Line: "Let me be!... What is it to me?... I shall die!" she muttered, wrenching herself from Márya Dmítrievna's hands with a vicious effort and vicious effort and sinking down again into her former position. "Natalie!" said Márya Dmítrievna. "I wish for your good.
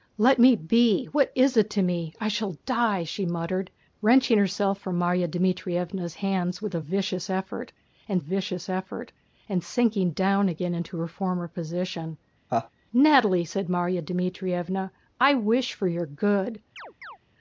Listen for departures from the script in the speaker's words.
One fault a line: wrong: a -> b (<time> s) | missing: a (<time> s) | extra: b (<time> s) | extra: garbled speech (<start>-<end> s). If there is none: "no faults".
no faults